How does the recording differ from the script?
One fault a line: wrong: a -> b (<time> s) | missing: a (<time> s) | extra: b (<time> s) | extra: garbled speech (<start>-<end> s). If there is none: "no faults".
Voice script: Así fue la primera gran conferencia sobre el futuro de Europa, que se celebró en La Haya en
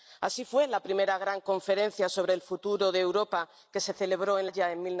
missing: La (4.5 s)